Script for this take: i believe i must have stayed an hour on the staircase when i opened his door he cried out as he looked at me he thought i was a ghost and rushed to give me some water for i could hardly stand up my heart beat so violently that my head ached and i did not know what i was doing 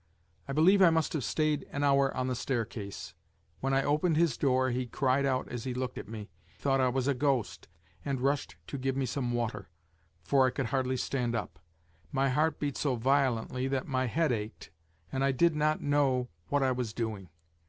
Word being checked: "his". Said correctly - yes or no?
yes